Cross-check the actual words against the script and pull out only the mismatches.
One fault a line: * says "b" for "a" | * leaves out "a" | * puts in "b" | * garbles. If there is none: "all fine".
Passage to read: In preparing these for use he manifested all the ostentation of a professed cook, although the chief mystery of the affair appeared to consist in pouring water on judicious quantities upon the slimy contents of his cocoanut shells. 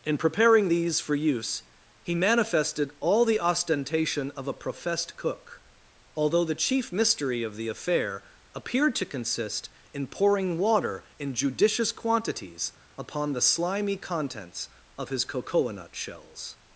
* says "in" for "on"